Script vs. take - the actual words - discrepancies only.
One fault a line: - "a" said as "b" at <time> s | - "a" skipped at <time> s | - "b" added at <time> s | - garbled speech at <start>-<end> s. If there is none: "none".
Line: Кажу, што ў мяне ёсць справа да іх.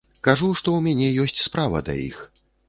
none